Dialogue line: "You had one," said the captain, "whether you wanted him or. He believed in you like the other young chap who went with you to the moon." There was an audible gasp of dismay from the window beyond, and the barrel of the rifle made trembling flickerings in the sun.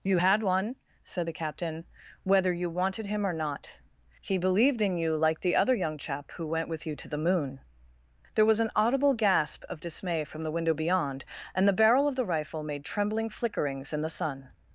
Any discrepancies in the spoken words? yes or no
yes